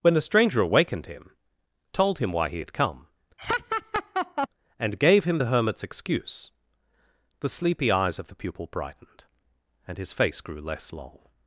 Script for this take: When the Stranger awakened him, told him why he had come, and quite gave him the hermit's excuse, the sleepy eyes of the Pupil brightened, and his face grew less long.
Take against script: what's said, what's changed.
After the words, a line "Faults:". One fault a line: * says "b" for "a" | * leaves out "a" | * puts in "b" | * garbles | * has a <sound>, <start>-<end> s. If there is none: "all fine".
When the Stranger awakened him, told him why he had come, and gave him the hermit's excuse, the sleepy eyes of the Pupil brightened, and his face grew less long.
Faults:
* has a laugh, 3.4-4.5 s
* leaves out "quite"